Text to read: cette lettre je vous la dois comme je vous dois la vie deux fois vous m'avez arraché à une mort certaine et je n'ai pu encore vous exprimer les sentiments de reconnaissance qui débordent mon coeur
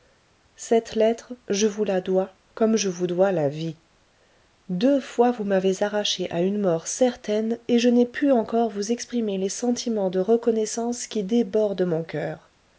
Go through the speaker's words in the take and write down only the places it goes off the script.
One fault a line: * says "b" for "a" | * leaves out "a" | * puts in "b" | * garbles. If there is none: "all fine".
all fine